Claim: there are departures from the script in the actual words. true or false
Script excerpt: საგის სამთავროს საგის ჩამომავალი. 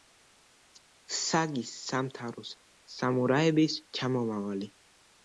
true